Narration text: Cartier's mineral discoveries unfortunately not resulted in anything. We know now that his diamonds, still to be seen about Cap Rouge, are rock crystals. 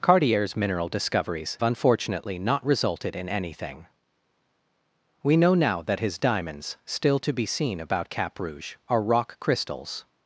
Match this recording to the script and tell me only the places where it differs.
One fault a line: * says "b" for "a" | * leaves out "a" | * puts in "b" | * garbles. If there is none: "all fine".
all fine